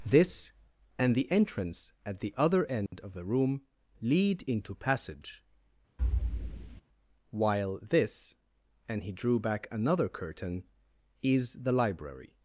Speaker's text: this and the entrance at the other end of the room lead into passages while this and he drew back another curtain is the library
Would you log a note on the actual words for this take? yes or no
yes